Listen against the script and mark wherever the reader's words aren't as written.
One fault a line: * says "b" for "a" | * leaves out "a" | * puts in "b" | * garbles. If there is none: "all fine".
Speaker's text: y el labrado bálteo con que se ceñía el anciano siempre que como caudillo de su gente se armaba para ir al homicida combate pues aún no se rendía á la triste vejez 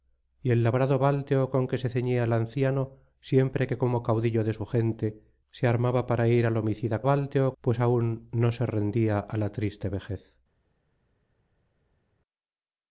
* says "bálteo" for "combate"